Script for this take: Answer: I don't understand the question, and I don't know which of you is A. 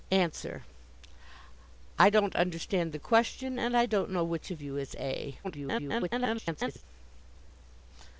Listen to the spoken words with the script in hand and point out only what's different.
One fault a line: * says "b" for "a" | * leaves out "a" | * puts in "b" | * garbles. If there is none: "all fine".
* garbles